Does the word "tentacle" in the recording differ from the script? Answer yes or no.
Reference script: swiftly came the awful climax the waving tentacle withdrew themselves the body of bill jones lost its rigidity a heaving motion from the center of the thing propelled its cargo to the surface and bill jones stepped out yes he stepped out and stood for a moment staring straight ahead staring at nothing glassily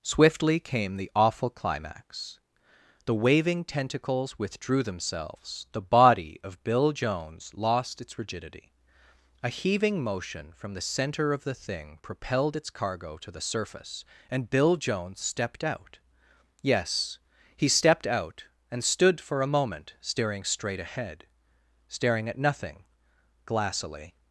yes